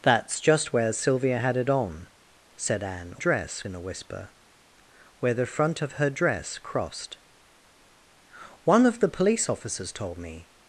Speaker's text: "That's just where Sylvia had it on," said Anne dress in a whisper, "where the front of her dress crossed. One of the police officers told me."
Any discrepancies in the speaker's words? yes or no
no